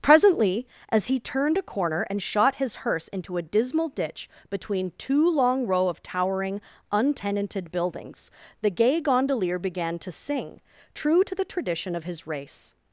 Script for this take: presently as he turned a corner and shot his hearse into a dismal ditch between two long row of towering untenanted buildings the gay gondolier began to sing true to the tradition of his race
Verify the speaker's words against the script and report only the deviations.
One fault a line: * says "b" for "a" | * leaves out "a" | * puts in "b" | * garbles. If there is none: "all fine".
all fine